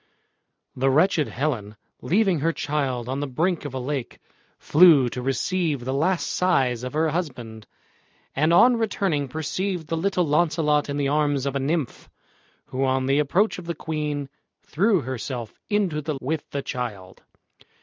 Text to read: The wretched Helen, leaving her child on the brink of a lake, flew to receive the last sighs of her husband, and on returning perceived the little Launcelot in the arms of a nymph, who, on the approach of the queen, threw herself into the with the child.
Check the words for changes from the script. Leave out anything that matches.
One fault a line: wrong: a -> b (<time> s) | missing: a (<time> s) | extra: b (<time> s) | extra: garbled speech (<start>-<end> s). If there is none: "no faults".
no faults